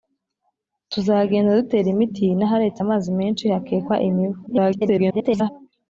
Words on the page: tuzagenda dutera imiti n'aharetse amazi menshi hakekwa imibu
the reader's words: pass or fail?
fail